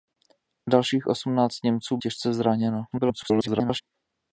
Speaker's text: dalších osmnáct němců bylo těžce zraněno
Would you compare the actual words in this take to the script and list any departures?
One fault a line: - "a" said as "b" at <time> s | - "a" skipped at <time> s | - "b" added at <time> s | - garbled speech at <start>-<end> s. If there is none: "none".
- "bylo" skipped at 2.0 s
- garbled speech at 2.9-3.8 s